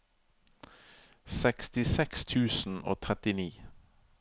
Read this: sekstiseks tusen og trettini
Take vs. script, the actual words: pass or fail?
pass